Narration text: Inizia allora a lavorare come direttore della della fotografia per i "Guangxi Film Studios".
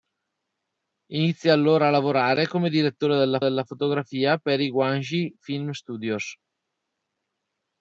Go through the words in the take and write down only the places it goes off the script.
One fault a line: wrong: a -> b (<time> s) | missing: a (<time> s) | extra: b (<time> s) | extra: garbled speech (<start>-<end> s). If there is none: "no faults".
no faults